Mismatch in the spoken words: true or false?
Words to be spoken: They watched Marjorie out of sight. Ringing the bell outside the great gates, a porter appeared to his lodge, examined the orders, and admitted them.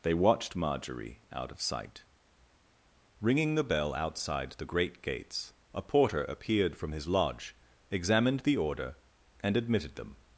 true